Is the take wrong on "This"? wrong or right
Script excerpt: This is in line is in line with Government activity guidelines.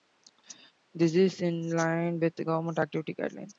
right